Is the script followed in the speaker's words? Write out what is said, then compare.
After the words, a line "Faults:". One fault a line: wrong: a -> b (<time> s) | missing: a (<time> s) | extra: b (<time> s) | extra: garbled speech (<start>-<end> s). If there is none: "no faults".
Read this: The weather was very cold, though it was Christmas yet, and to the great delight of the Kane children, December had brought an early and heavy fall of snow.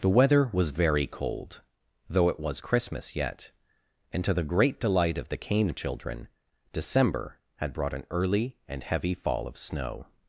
The weather was very cold, though it was Christmas yet, and to the great delight of the Kane children, December had brought an early and heavy fall of snow.
Faults:
no faults